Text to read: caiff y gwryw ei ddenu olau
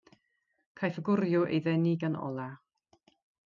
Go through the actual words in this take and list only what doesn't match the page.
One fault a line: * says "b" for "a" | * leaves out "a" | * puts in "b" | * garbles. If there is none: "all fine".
* puts in "gan"